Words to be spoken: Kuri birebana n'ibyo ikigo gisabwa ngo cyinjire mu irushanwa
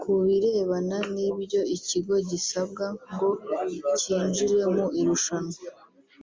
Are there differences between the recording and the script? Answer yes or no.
yes